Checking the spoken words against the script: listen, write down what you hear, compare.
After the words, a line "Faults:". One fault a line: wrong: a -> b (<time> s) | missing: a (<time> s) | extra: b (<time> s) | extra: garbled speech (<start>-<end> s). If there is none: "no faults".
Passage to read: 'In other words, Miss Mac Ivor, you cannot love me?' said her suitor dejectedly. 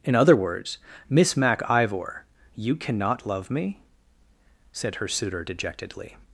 'In other words, Miss Mac Ivor, you cannot love me?' said her suitor dejectedly.
Faults:
no faults